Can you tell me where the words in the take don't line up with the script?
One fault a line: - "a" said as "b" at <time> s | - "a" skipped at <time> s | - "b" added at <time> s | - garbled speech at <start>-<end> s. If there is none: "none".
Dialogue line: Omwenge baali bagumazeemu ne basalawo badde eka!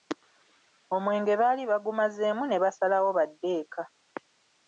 none